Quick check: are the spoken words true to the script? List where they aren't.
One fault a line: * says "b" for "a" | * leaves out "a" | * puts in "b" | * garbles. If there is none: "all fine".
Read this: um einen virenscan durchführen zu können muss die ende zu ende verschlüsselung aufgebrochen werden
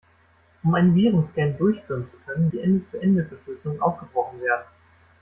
* leaves out "muss"